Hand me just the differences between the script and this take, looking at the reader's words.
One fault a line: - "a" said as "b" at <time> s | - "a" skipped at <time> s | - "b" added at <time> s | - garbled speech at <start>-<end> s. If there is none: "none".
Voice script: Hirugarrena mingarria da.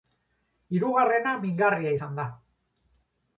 - "izan" added at 2.0 s